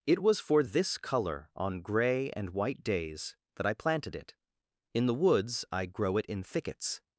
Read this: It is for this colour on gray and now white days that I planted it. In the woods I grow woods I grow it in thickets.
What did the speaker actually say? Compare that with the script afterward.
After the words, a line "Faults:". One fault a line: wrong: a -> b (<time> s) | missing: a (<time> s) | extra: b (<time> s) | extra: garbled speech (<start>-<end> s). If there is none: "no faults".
It was for this colour on gray and white days that I planted it. In the woods I grow it in thickets.
Faults:
wrong: is -> was (0.2 s)
missing: now (2.5 s)
missing: woods I grow (6.2 s)